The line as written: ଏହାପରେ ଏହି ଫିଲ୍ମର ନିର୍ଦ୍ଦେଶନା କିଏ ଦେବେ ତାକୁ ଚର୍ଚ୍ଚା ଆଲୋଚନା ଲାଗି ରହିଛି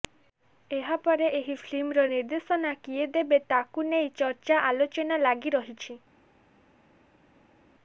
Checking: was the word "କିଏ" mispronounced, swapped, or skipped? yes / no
no